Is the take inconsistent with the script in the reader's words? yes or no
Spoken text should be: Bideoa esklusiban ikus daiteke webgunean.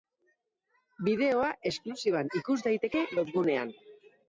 no